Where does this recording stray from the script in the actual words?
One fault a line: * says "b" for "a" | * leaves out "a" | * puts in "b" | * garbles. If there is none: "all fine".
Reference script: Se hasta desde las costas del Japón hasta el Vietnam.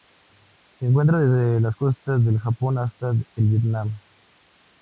* says "encuentra" for "hasta"